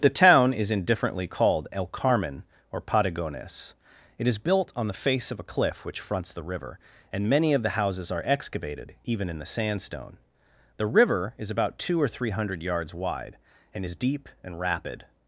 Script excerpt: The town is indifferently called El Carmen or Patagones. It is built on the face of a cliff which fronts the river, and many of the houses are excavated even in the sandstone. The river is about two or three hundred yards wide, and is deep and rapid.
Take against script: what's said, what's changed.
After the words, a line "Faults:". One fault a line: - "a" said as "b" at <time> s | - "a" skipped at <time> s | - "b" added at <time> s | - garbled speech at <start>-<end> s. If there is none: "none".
The town is indifferently called El Carmen or Patagones. It is built on the face of a cliff which fronts the river, and many of the houses are excavated even in the sandstone. The river is about two or three hundred yards wide, and is deep and rapid.
Faults:
none